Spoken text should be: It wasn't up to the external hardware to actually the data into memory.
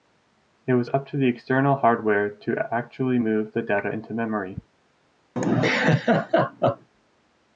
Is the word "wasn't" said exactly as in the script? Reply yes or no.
no